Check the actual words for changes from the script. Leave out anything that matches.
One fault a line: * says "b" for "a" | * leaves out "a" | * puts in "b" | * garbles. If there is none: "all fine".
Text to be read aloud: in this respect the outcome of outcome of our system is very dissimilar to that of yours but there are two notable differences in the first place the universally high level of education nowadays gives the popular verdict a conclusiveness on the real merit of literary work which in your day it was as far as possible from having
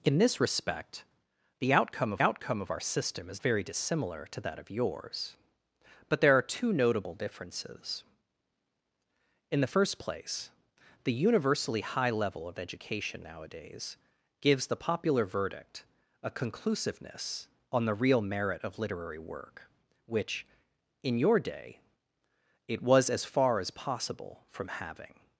all fine